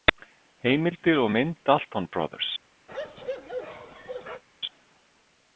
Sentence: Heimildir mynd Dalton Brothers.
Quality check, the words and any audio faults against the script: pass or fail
fail